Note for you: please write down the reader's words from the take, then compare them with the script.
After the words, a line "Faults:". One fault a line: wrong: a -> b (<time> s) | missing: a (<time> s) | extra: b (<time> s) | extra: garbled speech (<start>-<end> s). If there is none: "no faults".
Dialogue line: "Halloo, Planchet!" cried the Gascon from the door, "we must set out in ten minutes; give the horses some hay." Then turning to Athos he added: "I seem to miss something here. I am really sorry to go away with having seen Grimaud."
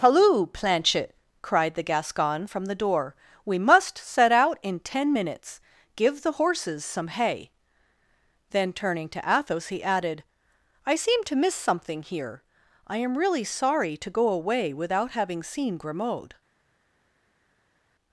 "Halloo, Planchet!" cried the Gascon from the door, "we must set out in ten minutes; give the horses some hay." Then turning to Athos he added: "I seem to miss something here. I am really sorry to go away without having seen Grimaud."
Faults:
wrong: with -> without (14.7 s)